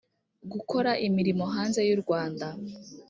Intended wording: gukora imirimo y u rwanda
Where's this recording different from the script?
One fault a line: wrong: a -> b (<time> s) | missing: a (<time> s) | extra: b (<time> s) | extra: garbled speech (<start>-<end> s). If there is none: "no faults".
extra: hanze (1.5 s)